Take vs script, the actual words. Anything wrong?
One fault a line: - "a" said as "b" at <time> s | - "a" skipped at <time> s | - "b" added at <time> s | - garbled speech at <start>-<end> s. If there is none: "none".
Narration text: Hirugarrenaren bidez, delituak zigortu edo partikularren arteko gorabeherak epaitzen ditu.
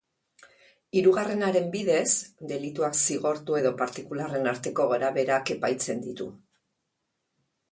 none